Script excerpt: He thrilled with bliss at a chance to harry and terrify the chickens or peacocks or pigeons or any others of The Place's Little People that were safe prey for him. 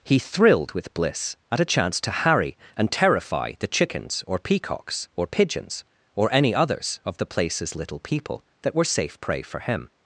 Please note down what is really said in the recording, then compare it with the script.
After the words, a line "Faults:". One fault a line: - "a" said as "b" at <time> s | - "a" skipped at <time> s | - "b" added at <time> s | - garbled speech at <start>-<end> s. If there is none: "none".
He thrilled with bliss at a chance to harry and terrify the chickens or peacocks or pigeons or any others of The Place's Little People that were safe prey for him.
Faults:
none